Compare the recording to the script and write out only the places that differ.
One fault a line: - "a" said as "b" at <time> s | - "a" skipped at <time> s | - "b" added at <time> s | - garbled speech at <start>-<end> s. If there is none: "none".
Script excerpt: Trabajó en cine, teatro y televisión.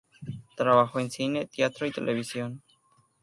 none